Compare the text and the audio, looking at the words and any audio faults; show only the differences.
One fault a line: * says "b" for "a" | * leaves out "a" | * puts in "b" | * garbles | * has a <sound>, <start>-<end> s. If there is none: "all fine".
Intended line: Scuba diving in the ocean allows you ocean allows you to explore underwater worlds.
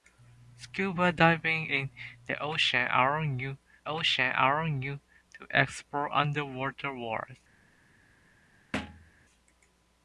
* has a thud, 8.7-9.1 s